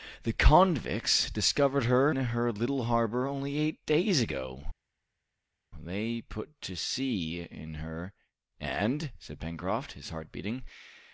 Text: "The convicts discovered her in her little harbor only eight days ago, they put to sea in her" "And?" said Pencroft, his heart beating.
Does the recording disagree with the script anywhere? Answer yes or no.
yes